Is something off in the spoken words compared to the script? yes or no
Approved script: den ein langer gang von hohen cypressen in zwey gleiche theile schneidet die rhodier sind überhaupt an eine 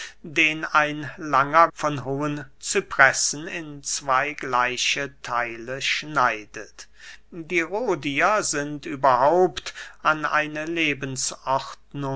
yes